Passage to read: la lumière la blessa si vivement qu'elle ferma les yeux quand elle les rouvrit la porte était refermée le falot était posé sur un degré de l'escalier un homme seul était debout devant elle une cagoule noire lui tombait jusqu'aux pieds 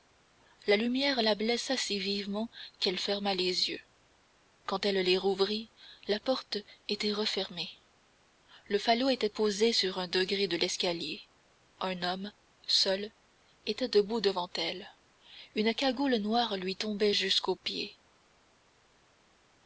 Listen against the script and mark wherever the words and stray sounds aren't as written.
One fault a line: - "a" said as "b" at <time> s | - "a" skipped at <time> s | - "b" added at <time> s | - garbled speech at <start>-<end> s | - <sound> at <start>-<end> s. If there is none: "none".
none